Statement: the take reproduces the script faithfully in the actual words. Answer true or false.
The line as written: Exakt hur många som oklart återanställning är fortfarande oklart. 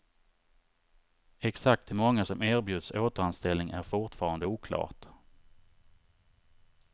false